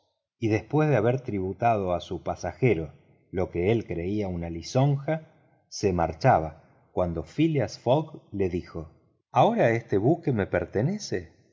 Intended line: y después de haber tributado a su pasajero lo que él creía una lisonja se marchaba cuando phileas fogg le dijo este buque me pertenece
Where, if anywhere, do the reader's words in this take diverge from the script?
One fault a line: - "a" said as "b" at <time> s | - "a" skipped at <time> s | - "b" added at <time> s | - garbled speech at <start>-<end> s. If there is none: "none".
- "ahora" added at 9.3 s